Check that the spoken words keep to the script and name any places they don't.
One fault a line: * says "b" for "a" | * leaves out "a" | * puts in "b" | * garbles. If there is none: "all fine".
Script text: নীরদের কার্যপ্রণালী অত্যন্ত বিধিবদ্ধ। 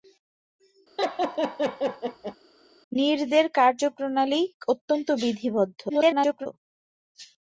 * garbles